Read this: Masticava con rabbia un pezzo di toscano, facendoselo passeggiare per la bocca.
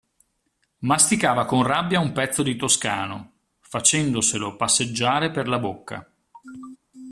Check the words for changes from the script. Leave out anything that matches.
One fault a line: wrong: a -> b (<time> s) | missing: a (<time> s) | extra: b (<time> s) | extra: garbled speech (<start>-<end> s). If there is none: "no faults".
no faults